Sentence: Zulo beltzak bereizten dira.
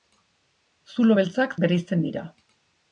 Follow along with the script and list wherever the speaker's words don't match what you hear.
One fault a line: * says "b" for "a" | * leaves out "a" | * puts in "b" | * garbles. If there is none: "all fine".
all fine